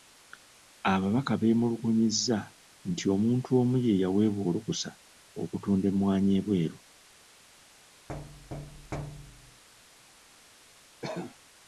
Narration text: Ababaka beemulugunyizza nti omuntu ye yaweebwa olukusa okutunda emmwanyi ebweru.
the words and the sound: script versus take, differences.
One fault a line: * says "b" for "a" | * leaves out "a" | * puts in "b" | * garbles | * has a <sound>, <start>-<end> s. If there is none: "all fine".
* puts in "omu"
* has a thud, 8.1-9.6 s
* has a cough, 11.0-11.4 s